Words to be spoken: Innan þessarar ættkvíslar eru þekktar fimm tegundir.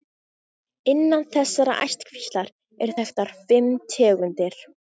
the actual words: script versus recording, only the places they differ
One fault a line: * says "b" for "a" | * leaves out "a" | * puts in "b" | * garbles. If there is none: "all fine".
all fine